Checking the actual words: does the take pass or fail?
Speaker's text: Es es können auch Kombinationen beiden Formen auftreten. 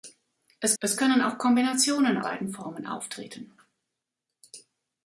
pass